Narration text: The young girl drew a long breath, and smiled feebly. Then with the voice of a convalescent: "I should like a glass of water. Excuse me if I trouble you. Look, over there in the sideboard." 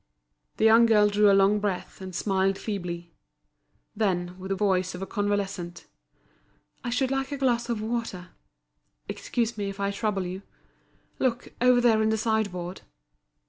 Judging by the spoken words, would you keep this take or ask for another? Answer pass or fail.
pass